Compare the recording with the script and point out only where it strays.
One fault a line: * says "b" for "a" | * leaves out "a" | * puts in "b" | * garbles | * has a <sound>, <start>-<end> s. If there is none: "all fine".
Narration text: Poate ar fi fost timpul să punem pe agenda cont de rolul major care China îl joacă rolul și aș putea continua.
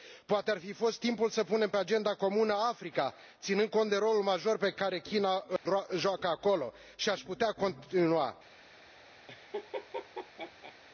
* puts in "comună Africa ținând"
* puts in "pe"
* has a dropout, 5.6-5.7 s
* says "acolo" for "rolul"
* has a laugh, 9.3-10.8 s